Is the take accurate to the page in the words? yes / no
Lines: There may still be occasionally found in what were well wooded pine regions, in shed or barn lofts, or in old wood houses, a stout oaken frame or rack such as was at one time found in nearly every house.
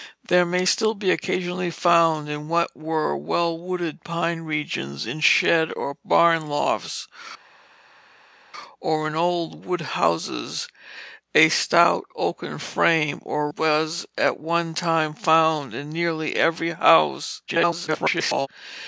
no